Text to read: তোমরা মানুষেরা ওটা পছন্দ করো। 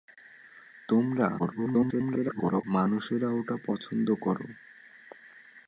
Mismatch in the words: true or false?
true